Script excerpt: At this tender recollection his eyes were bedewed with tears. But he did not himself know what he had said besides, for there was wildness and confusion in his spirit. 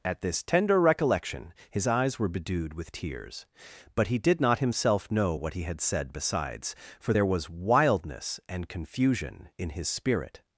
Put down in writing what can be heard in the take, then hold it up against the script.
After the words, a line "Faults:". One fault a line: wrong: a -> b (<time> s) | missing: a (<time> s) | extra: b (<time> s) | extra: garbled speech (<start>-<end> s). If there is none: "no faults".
At this tender recollection his eyes were bedewed with tears. But he did not himself know what he had said besides, for there was wildness and confusion in his spirit.
Faults:
no faults